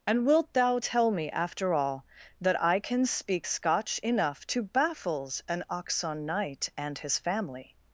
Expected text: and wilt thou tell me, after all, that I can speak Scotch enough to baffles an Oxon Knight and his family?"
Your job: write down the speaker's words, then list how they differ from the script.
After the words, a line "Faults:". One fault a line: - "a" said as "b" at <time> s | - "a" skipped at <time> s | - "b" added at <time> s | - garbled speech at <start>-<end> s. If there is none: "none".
and wilt thou tell me, after all, that I can speak Scotch enough to baffles an Oxon Knight and his family?"
Faults:
none